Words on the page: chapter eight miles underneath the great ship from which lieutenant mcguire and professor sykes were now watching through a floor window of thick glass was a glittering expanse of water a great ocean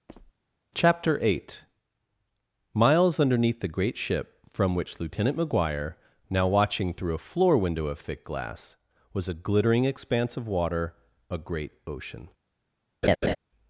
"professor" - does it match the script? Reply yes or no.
no